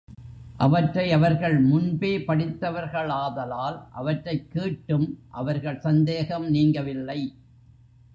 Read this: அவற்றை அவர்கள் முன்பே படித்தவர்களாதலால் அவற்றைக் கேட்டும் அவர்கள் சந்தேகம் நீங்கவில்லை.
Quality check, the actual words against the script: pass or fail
pass